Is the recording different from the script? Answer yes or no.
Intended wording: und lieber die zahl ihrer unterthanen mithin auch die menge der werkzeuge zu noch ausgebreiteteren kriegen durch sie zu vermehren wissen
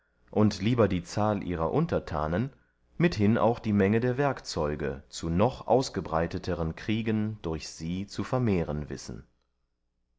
no